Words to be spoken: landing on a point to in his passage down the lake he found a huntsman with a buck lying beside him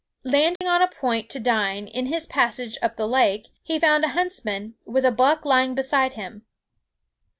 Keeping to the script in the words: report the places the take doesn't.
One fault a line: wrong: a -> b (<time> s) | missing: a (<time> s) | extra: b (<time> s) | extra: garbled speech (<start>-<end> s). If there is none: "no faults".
extra: dine (1.4 s)
wrong: down -> up (2.8 s)